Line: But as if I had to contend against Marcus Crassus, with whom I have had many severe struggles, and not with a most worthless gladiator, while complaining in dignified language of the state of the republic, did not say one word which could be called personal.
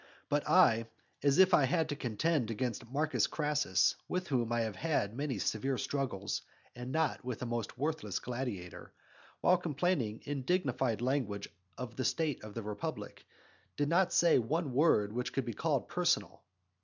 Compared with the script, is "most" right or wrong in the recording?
right